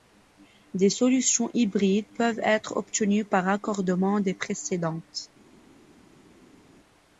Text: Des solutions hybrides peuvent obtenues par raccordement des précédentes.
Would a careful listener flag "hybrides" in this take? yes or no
no